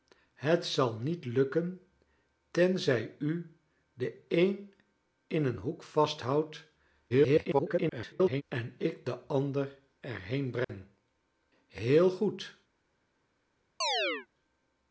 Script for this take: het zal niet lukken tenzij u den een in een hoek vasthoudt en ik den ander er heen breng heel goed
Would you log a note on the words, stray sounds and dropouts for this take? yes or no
yes